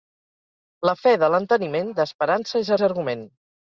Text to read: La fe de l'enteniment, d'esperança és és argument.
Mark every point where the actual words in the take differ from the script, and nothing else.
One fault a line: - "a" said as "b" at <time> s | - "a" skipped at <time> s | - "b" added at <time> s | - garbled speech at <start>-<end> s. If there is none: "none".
none